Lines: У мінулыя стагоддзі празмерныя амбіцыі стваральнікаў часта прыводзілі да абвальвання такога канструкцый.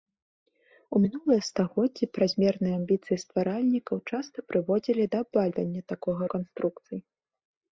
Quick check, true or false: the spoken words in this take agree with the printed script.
true